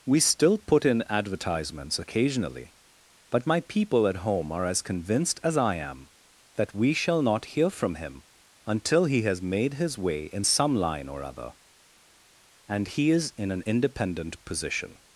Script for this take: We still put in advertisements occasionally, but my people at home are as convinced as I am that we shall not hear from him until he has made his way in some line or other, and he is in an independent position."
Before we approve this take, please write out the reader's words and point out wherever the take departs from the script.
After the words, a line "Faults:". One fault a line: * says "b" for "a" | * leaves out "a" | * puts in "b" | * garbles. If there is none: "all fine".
We still put in advertisements occasionally, but my people at home are as convinced as I am that we shall not hear from him until he has made his way in some line or other, and he is in an independent position."
Faults:
all fine